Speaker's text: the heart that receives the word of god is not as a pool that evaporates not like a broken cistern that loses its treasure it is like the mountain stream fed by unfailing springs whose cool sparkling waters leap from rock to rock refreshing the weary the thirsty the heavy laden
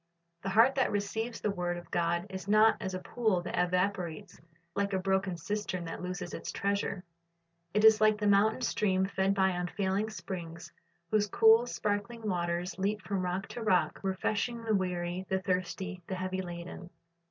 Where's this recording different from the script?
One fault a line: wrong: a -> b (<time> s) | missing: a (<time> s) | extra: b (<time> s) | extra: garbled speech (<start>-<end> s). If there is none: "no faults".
missing: not (4.4 s)